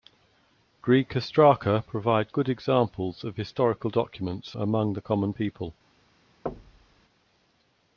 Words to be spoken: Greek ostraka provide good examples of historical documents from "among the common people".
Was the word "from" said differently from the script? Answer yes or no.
yes